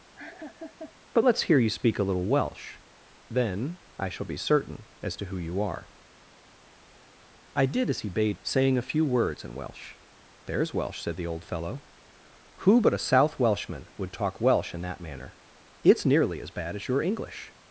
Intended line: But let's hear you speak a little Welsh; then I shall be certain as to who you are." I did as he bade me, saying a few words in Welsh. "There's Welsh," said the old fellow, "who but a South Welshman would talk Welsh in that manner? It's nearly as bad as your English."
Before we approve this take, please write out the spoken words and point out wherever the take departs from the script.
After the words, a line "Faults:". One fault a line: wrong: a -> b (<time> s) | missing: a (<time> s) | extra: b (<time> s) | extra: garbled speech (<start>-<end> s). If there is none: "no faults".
But let's hear you speak a little Welsh; then I shall be certain as to who you are." I did as he bade saying a few words in Welsh. "There's Welsh," said the old fellow, "who but a South Welshman would talk Welsh in that manner? It's nearly as bad as your English."
Faults:
missing: me (8.4 s)